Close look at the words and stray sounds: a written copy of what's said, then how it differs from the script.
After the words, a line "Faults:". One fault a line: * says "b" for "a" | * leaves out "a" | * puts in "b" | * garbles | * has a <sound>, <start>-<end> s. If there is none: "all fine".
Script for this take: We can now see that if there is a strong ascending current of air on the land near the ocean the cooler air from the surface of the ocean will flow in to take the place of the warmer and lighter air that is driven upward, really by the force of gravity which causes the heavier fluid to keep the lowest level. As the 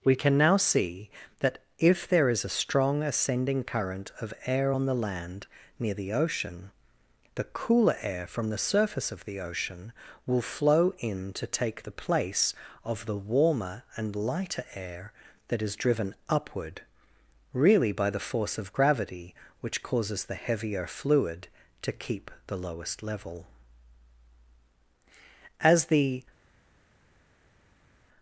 We can now see that if there is a strong ascending current of air on the land near the ocean the cooler air from the surface of the ocean will flow in to take the place of the warmer and lighter air that is driven upward, really by the force of gravity which causes the heavier fluid to keep the lowest level. As the
Faults:
all fine